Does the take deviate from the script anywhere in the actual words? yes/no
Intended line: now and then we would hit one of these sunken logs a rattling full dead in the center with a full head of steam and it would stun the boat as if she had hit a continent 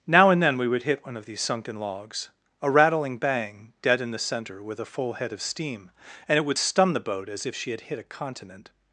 yes